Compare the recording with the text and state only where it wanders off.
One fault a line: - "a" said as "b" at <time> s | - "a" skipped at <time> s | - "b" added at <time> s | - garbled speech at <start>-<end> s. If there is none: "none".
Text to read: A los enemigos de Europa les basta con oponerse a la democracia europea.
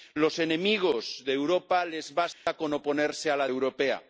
- "democracia" skipped at 3.5 s